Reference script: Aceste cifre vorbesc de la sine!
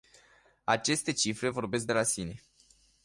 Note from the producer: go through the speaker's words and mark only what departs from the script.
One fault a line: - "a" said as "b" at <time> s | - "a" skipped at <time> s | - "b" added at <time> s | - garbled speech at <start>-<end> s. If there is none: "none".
none